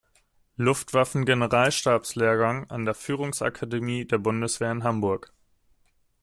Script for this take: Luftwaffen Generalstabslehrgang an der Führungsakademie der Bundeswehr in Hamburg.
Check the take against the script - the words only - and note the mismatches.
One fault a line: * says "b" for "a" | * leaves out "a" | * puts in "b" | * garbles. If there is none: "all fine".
all fine